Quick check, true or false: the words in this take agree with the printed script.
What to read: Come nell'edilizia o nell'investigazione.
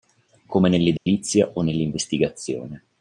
true